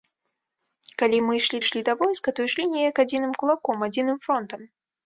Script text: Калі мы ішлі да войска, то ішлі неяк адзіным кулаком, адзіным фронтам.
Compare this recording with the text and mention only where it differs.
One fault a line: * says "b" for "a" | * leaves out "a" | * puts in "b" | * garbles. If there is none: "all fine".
* puts in "ішлі"